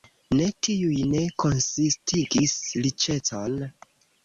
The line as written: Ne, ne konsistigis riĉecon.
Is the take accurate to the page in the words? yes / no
no